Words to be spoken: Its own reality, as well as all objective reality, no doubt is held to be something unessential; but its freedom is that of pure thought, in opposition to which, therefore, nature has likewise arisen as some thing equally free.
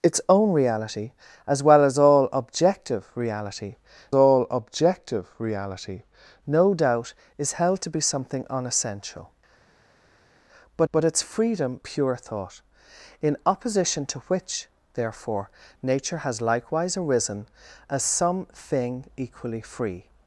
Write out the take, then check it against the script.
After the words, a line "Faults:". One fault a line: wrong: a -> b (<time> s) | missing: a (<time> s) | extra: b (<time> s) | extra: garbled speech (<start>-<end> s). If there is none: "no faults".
Its own reality, as well as all objective reality all objective reality, no doubt is held to be something unessential; but but its freedom pure thought, in opposition to which, therefore, nature has likewise arisen as some thing equally free.
Faults:
extra: all objective reality (4.1 s)
extra: but (10.9 s)
missing: is that of (11.8 s)